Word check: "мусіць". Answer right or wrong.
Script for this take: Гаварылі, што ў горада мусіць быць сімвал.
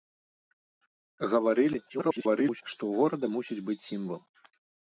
right